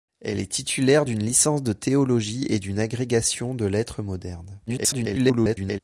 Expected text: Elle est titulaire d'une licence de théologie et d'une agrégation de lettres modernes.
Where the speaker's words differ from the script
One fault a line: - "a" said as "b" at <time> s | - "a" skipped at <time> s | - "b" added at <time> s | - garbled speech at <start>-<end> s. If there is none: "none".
- garbled speech at 4.7-5.8 s